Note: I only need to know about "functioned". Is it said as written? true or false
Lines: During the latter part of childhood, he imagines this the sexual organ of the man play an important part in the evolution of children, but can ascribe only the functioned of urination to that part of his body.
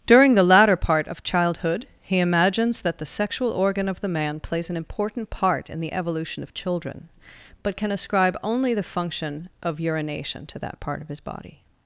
false